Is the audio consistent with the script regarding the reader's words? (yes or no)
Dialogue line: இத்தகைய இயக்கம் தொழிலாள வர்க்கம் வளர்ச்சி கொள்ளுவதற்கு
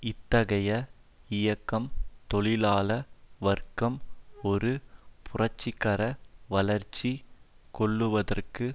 no